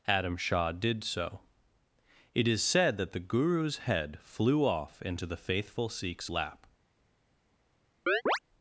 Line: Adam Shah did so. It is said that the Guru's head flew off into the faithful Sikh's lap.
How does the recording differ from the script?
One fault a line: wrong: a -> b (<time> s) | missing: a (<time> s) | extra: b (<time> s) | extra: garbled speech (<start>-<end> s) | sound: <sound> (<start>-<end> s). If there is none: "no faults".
sound: chirp (8.1-8.4 s)